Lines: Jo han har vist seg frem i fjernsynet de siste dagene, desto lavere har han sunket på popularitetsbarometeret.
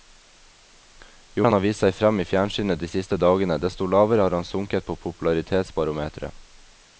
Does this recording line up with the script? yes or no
yes